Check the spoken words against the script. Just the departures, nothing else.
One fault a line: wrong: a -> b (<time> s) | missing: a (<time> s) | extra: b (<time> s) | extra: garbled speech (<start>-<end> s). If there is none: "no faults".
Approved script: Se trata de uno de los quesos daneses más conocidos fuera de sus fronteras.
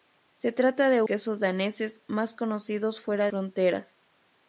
missing: uno de los (1.0 s)
missing: de sus (3.3 s)